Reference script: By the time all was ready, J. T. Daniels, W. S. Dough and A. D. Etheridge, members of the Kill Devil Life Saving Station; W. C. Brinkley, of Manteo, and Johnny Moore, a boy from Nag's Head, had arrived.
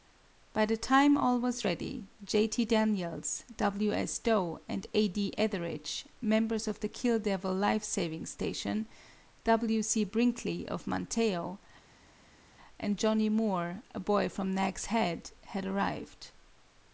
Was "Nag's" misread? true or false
false